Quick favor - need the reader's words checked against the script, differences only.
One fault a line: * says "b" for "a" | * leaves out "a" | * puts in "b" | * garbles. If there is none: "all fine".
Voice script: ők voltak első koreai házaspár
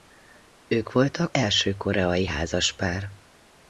all fine